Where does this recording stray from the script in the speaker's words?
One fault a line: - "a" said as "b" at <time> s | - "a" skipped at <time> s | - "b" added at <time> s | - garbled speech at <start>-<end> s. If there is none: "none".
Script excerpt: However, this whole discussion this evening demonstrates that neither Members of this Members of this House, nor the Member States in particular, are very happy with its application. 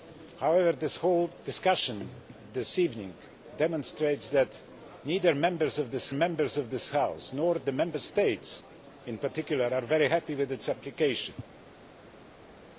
none